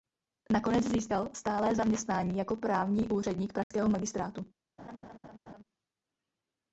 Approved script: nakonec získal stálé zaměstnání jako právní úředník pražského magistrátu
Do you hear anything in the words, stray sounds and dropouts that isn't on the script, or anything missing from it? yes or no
yes